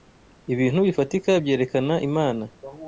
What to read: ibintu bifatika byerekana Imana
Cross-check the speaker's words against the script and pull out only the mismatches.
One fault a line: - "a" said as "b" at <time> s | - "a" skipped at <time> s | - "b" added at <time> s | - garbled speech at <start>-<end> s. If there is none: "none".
none